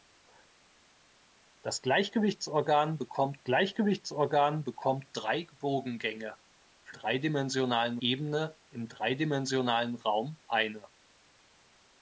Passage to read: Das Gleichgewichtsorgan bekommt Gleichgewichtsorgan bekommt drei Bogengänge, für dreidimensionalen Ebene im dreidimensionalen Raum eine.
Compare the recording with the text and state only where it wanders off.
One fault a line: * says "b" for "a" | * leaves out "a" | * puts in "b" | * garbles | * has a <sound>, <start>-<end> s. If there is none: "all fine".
all fine